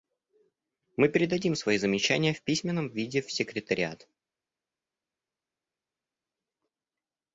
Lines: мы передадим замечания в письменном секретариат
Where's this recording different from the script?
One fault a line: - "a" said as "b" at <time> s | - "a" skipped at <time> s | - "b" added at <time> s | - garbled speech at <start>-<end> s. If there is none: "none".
- "свои" added at 1.5 s
- "виде в" added at 2.9 s